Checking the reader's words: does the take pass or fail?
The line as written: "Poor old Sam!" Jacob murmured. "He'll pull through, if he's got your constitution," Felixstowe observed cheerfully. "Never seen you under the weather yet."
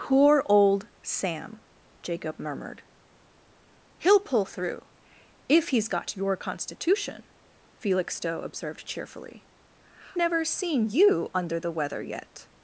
pass